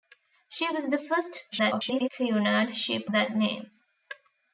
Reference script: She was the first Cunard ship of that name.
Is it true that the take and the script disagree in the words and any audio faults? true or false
true